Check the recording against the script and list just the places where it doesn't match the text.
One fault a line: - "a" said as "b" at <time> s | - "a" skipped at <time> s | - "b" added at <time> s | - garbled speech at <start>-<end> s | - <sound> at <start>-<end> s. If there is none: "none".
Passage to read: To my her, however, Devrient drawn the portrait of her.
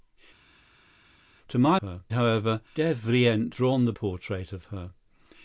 none